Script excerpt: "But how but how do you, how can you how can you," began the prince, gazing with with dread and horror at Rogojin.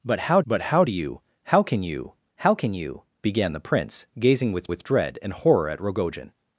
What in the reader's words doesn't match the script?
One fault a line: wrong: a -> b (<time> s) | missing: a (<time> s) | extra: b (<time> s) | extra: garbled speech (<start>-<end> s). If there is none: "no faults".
no faults